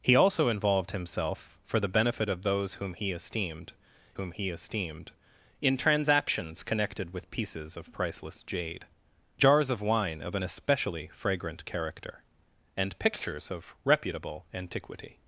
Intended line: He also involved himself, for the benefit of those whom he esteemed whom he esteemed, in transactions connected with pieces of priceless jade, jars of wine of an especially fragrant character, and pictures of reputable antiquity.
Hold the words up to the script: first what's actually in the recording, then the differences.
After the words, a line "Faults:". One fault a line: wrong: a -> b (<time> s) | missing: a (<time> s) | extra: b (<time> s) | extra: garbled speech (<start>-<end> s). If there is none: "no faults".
He also involved himself, for the benefit of those whom he esteemed whom he esteemed, in transactions connected with pieces of priceless jade, jars of wine of an especially fragrant character, and pictures of reputable antiquity.
Faults:
no faults